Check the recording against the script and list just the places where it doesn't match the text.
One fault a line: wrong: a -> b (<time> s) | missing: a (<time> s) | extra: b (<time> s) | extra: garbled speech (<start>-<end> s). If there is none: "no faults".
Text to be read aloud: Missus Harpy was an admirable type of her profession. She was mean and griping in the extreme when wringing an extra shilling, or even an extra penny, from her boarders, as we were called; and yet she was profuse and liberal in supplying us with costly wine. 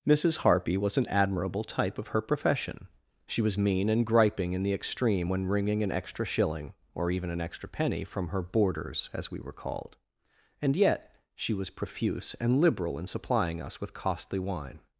no faults